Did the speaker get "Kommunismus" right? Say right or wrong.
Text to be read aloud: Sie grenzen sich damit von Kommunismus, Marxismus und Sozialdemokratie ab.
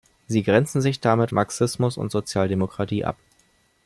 wrong